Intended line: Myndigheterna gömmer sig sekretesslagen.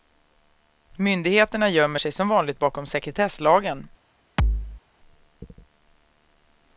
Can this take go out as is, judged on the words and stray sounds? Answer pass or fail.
fail